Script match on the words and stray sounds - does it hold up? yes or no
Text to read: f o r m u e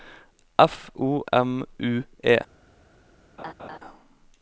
no